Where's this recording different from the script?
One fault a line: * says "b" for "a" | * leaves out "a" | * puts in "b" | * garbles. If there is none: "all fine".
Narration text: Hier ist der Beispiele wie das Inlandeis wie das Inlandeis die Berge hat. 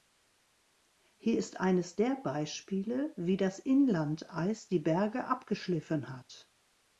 * puts in "eines"
* leaves out "wie das Inlandeis"
* puts in "abgeschliffen"